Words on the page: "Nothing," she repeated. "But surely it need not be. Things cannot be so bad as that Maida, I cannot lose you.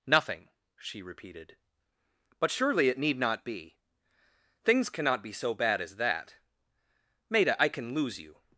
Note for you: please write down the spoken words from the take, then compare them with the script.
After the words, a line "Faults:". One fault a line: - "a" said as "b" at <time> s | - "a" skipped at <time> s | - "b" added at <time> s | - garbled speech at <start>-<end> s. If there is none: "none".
"Nothing," she repeated. "But surely it need not be. Things cannot be so bad as that Maida, I can lose you.
Faults:
- "cannot" said as "can" at 7.7 s